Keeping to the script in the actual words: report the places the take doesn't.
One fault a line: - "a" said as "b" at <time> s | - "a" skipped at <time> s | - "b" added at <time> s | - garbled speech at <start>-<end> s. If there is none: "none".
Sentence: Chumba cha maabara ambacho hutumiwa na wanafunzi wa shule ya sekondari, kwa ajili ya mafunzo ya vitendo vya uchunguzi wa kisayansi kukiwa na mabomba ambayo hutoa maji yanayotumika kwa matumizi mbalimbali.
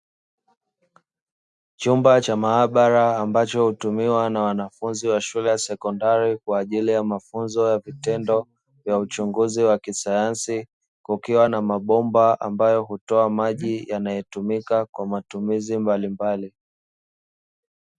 none